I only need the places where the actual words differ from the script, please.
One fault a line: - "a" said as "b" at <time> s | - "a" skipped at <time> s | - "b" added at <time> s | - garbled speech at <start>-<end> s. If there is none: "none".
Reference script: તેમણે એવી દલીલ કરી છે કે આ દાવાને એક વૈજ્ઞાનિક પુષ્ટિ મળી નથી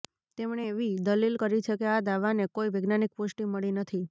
- "એક" said as "કોઈ" at 2.5 s